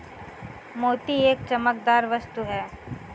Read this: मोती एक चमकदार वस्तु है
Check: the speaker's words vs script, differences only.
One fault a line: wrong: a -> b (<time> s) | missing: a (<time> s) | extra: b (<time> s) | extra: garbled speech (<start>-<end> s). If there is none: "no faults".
no faults